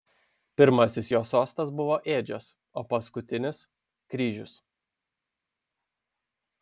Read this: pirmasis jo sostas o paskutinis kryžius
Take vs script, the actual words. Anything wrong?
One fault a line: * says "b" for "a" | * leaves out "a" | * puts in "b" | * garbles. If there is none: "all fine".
* puts in "buvo ėdžios"